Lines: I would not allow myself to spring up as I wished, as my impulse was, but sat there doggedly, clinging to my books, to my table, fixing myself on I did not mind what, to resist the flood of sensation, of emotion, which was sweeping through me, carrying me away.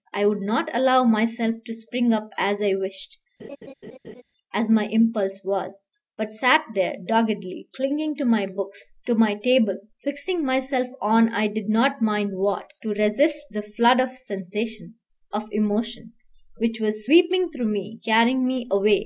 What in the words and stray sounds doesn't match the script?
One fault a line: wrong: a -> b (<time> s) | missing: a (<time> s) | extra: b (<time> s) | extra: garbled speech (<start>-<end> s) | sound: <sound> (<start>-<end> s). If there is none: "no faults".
sound: laugh (3.4-4.2 s)